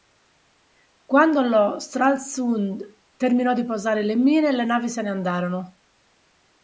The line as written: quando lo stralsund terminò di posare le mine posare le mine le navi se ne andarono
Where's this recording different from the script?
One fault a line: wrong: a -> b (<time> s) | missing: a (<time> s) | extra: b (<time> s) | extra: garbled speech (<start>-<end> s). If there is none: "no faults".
missing: posare le mine (4.5 s)